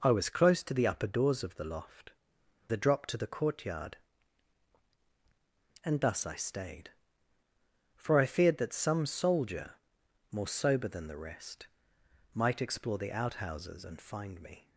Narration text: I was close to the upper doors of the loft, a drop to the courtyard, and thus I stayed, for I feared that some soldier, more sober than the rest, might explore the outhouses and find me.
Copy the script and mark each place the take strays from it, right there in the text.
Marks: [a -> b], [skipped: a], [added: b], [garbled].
I was close to the upper doors of the loft, a drop to the courtyard, and thus I stayed, for I feared that some soldier, more sober than the rest, might explore the outhouses and find me.